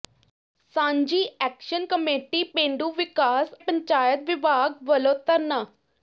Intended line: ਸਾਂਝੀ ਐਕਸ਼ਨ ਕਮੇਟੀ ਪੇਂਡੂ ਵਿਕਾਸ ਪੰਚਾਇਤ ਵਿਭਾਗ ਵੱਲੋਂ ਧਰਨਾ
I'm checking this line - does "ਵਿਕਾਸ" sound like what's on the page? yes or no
yes